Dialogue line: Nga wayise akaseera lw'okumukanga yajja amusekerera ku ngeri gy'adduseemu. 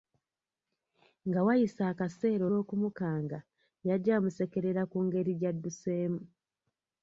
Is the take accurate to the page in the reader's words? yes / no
yes